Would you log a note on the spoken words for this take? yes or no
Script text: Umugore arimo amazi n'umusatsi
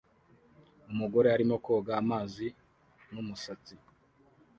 yes